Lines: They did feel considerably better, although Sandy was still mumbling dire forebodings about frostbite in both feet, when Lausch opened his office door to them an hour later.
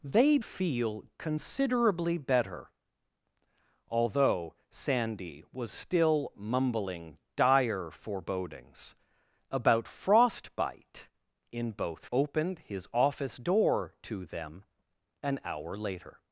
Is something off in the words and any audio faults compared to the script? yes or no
yes